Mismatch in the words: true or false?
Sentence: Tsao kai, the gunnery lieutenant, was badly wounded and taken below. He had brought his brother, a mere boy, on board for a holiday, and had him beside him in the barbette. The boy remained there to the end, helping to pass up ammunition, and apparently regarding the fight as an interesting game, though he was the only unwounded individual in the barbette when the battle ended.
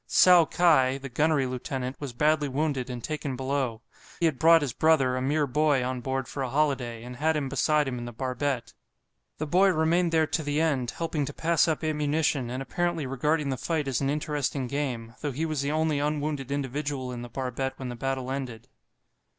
true